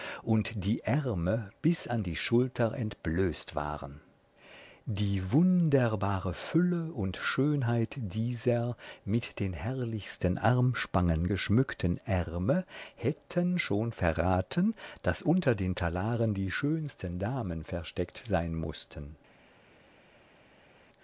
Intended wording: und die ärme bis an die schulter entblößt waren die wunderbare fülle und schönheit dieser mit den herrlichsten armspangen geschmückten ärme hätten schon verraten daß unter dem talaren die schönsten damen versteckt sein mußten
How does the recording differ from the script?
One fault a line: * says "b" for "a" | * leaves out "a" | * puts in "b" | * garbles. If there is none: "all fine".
* says "den" for "dem"